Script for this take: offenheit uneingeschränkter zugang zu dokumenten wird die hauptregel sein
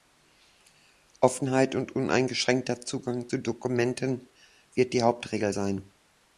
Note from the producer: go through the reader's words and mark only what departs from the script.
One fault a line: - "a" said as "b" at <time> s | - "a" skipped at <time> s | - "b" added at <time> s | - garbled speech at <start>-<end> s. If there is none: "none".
- "und" added at 1.8 s